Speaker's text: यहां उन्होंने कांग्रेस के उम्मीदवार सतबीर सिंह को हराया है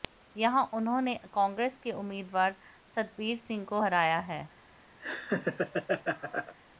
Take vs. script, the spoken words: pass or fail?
pass